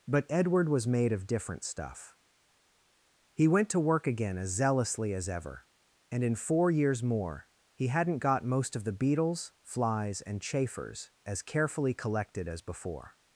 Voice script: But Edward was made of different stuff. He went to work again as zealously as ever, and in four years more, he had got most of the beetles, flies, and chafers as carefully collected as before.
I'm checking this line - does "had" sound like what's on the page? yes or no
no